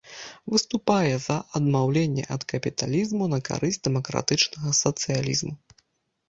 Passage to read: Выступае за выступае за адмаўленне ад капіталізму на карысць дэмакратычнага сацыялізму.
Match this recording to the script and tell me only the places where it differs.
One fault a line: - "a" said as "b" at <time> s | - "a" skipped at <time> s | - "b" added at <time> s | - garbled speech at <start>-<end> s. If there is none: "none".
- "выступае за" skipped at 1.4 s